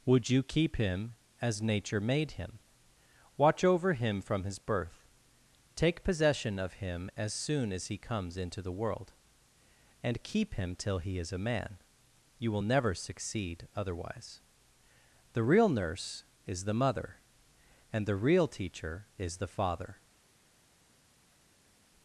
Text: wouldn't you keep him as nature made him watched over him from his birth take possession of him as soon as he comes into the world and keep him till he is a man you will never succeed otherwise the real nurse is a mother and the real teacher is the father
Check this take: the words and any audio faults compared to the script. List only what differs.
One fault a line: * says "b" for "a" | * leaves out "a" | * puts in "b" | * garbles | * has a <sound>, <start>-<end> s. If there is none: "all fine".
* says "would" for "wouldn't"
* says "watch" for "watched"
* says "the" for "a"